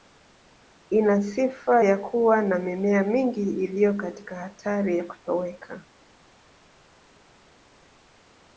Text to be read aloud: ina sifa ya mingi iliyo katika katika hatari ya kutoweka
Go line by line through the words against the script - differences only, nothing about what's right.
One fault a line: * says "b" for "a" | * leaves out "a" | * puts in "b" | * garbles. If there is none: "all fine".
* puts in "kuwa na mimea"
* leaves out "katika"